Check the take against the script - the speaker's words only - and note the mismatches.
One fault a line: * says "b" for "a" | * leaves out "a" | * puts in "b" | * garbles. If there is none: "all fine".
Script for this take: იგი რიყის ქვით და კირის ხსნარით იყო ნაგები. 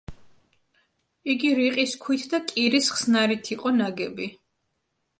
all fine